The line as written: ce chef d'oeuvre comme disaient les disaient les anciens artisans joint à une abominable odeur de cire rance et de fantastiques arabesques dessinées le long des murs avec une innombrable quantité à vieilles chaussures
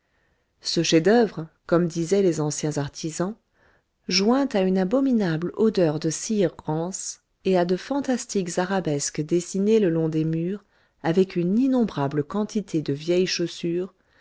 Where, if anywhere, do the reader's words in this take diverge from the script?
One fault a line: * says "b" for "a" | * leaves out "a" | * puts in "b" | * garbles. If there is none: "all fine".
* leaves out "disaient les"
* puts in "à"
* says "de" for "à"